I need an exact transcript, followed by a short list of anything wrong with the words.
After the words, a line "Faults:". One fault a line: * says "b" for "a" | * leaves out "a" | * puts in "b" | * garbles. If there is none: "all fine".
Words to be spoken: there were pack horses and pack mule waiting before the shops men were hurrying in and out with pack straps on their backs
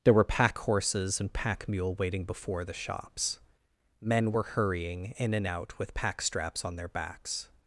there were pack horses and pack mule waiting before the shops men were hurrying in and out with pack straps on their backs
Faults:
all fine